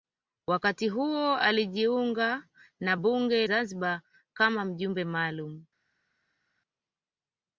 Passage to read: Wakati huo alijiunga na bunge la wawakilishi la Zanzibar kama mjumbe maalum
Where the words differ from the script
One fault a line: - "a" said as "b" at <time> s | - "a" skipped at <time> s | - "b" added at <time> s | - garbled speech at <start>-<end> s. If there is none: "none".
- "la wawakilishi la" skipped at 3.5 s